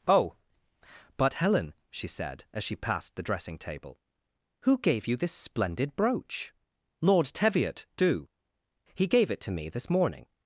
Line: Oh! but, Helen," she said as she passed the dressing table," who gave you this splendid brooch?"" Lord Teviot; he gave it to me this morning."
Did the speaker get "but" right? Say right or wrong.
right